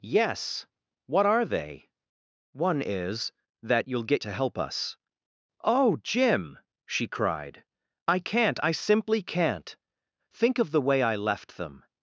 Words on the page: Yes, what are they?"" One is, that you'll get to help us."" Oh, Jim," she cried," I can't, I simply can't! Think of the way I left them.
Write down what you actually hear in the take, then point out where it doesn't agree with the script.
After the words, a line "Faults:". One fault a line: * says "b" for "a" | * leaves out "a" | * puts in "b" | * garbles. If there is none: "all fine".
Yes, what are they?"" One is, that you'll get to help us."" Oh, Jim," she cried," I can't, I simply can't! Think of the way I left them.
Faults:
all fine